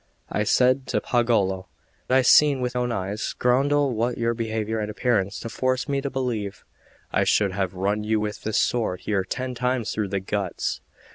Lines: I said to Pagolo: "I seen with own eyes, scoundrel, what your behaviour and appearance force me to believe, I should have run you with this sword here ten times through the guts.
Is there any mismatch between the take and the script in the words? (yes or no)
no